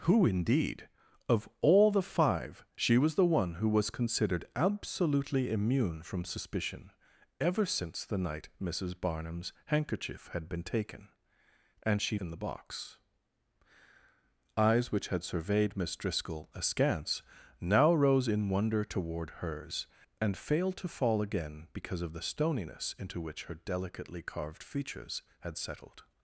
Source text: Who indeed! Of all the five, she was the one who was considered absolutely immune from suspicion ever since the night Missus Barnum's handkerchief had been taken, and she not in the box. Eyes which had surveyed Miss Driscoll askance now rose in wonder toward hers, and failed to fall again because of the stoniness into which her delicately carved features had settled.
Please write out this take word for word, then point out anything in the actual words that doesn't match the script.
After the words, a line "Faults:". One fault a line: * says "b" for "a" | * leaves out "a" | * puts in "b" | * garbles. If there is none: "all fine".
Who indeed! Of all the five, she was the one who was considered absolutely immune from suspicion ever since the night Missus Barnum's handkerchief had been taken, and she in the box. Eyes which had surveyed Miss Driscoll askance now rose in wonder toward hers, and failed to fall again because of the stoniness into which her delicately carved features had settled.
Faults:
* leaves out "not"